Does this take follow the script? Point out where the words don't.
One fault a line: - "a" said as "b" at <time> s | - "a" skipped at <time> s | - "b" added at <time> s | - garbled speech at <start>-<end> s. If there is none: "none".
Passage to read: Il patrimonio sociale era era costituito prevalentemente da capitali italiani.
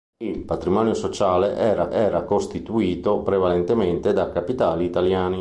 none